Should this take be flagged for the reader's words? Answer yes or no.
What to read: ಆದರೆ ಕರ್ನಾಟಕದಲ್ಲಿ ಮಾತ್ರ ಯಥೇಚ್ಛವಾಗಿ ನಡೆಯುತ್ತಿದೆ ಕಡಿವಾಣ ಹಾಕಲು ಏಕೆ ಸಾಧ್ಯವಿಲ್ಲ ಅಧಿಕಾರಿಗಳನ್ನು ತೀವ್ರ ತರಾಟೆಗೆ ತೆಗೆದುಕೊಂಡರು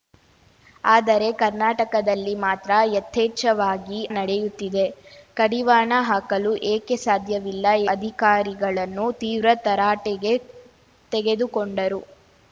no